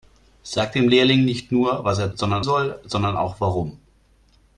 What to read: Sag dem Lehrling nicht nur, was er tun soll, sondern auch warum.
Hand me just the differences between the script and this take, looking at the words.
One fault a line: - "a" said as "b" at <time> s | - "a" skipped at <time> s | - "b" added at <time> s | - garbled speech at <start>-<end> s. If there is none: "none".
- "tun" said as "sondern" at 2.1 s